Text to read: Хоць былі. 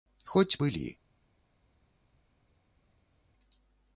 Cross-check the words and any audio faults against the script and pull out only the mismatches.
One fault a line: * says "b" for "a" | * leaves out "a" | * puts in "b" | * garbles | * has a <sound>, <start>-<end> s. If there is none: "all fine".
all fine